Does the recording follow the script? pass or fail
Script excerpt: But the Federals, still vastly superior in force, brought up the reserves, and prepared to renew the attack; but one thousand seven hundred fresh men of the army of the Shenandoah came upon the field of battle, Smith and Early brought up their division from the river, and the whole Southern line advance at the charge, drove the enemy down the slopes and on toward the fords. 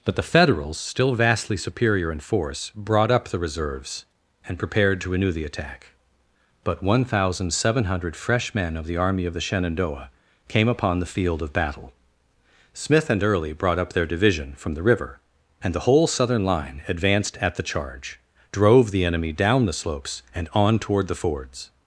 fail